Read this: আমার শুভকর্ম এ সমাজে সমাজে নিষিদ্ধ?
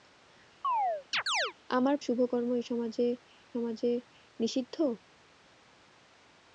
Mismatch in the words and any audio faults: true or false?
true